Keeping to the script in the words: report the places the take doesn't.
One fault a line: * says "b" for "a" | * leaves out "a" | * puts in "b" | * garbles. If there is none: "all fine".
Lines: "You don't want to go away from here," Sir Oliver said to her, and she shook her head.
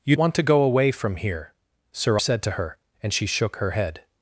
* leaves out "don't"
* leaves out "Oliver"